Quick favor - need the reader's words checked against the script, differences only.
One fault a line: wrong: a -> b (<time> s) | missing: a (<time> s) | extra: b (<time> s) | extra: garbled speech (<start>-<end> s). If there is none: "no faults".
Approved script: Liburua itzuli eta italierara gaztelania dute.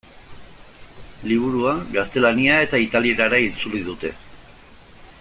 wrong: itzuli -> gaztelania (2.0 s)
wrong: gaztelania -> itzuli (3.5 s)